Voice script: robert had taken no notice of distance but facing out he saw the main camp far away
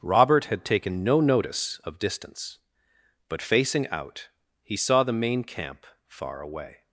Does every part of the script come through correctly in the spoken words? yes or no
yes